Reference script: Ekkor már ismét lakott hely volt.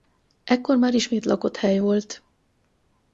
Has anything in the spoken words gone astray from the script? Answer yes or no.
no